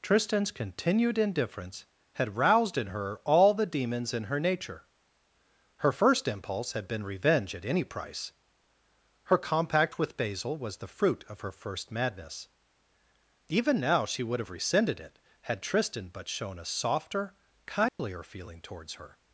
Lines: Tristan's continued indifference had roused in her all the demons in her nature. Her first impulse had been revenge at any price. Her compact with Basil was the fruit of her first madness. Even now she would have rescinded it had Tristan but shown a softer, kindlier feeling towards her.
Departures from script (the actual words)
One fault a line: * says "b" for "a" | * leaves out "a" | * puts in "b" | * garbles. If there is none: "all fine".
all fine